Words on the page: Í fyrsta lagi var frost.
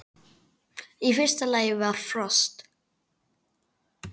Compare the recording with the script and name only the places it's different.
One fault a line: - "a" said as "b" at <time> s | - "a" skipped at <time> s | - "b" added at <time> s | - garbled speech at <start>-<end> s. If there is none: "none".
none